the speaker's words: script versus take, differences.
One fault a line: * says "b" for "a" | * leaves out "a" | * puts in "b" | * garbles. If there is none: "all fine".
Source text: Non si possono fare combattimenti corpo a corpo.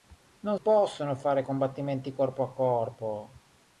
* leaves out "si"